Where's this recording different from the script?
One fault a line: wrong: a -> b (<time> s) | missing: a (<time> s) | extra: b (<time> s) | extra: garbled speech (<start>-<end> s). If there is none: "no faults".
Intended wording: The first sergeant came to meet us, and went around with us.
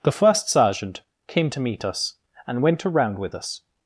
no faults